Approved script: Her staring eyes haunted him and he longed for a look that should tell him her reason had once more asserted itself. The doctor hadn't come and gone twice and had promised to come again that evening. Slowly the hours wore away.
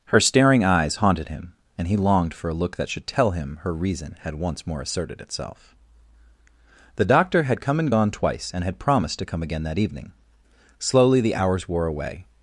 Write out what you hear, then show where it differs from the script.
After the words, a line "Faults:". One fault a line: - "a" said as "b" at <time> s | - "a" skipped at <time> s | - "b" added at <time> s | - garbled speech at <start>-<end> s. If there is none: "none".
Her staring eyes haunted him and he longed for a look that should tell him her reason had once more asserted itself. The doctor had come and gone twice and had promised to come again that evening. Slowly the hours wore away.
Faults:
- "hadn't" said as "had" at 7.4 s